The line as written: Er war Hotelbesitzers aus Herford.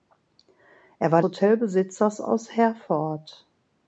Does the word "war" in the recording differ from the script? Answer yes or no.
no